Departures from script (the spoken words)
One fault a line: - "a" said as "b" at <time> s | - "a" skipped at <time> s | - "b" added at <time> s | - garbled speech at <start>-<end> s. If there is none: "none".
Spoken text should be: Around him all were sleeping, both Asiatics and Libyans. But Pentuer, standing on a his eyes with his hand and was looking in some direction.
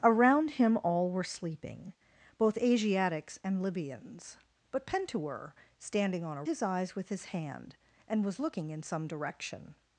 none